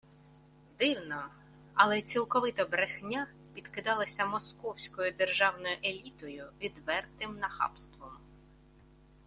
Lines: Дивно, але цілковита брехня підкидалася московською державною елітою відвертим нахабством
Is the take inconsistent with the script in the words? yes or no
no